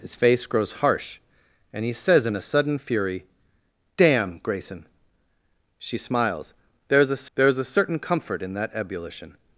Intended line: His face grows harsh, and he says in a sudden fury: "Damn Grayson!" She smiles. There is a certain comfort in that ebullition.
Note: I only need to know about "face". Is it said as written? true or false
true